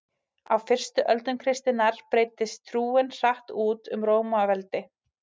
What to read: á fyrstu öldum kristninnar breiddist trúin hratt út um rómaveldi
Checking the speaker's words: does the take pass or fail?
pass